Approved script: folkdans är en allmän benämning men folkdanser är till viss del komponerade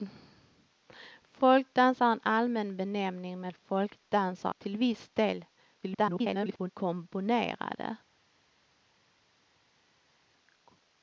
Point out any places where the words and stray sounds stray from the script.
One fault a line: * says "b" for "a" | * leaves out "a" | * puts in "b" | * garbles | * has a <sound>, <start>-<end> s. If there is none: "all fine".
* leaves out "är"
* garbles